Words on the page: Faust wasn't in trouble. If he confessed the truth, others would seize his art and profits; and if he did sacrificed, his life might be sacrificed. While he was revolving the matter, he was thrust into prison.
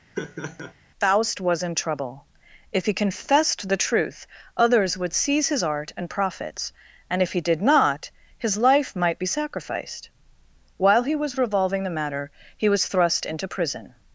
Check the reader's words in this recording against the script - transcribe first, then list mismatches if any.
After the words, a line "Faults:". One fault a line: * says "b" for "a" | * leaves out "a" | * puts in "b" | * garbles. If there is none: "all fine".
Faust was in trouble. If he confessed the truth, others would seize his art and profits; and if he did not, his life might be sacrificed. While he was revolving the matter, he was thrust into prison.
Faults:
* says "was" for "wasn't"
* says "not" for "sacrificed"